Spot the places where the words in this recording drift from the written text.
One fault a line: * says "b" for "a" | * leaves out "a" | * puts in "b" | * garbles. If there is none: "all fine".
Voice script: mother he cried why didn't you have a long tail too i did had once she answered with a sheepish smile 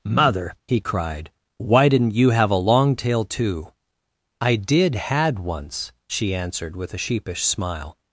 all fine